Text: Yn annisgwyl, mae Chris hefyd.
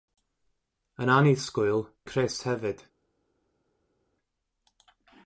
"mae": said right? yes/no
no